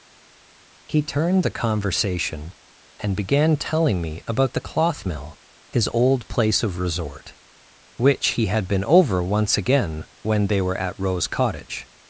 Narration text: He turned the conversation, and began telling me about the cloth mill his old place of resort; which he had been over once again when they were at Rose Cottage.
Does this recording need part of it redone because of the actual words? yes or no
no